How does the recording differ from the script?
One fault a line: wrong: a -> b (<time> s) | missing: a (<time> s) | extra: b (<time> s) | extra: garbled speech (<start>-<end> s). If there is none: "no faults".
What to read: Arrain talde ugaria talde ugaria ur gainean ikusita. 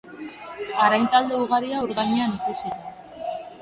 missing: talde ugaria (1.8 s)